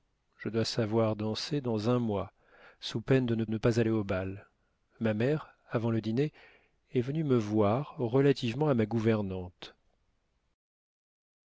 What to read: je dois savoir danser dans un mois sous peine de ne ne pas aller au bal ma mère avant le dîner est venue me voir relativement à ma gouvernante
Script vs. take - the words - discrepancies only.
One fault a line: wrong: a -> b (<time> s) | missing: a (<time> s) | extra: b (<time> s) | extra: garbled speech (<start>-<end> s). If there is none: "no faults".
no faults